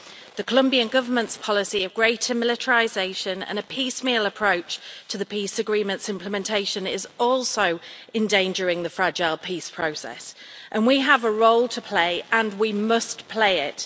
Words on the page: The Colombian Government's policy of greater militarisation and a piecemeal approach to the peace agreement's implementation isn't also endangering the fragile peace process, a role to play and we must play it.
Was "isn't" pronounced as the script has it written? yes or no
no